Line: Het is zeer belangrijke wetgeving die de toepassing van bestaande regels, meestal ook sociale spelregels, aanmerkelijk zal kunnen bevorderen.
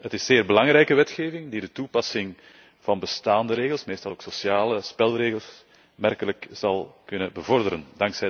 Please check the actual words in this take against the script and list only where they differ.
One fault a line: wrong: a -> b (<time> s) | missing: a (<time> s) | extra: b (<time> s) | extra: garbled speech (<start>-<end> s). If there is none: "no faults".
no faults